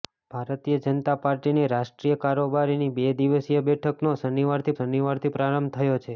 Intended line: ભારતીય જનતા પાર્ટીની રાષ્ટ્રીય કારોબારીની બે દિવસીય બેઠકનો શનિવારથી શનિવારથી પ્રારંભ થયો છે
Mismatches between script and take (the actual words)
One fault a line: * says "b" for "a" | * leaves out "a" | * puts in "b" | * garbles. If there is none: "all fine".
all fine